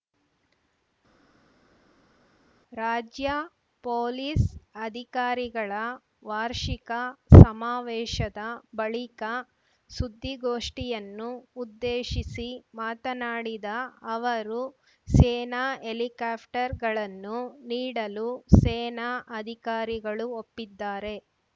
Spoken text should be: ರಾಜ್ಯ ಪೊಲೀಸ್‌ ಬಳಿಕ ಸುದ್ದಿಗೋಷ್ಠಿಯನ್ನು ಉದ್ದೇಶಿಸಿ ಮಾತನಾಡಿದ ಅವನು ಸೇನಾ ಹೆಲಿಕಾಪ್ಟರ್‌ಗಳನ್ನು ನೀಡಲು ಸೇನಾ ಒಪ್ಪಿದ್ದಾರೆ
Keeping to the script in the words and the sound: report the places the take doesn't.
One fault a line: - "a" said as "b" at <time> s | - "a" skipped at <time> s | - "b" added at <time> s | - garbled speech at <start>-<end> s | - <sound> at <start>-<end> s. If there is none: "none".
- "ಅಧಿಕಾರಿಗಳ ವಾರ್ಷಿಕ ಸಮಾವೇಶದ" added at 4.8 s
- "ಅವನು" said as "ಅವರು" at 14.1 s
- "ಅಧಿಕಾರಿಗಳು" added at 19.4 s